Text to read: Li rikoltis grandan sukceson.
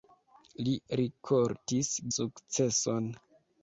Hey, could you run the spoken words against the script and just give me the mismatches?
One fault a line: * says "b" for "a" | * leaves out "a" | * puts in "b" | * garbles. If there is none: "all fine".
* leaves out "grandan"